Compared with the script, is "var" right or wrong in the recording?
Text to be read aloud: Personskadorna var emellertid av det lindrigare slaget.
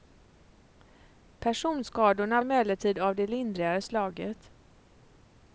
wrong